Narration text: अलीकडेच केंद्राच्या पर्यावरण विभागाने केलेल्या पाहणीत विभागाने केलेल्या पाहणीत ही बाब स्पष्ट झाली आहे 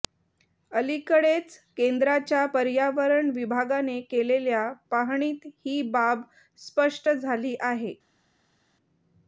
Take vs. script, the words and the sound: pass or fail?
fail